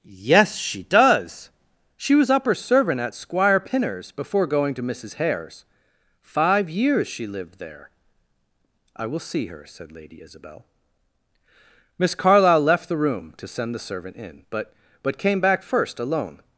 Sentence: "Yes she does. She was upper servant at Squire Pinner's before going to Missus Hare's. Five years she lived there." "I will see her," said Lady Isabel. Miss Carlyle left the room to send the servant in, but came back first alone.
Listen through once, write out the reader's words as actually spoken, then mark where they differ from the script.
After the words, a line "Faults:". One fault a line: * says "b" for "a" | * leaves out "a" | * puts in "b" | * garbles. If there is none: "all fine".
"Yes she does. She was upper servant at Squire Pinner's before going to Missus Hare's. Five years she lived there." "I will see her," said Lady Isabel. Miss Carlyle left the room to send the servant in, but but came back first alone.
Faults:
* puts in "but"